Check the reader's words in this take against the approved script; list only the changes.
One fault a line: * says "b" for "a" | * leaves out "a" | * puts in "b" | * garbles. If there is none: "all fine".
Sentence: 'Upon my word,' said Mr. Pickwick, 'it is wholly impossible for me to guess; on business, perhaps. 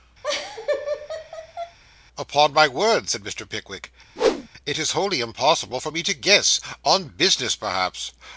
all fine